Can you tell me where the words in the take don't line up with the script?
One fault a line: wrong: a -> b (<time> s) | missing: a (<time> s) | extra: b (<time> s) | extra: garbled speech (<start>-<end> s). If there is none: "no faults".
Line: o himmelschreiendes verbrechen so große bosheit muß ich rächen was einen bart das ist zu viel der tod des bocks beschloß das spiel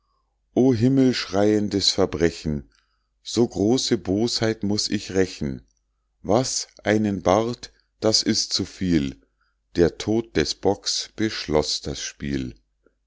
no faults